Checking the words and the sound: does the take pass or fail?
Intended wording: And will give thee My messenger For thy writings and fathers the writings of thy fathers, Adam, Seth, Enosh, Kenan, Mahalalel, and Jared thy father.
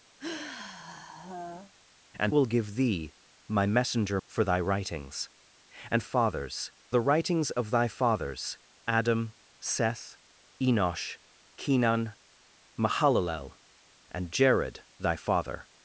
fail